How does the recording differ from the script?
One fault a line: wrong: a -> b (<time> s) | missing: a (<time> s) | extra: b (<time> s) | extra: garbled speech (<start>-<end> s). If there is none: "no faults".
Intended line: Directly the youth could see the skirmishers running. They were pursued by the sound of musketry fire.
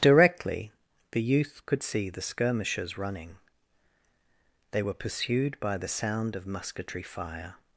no faults